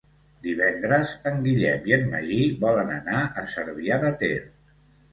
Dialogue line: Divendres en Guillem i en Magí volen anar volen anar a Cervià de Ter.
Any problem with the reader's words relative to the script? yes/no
yes